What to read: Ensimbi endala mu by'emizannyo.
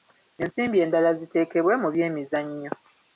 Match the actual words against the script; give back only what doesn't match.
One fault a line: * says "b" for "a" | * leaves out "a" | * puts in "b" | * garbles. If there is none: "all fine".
* puts in "ziteekebwe"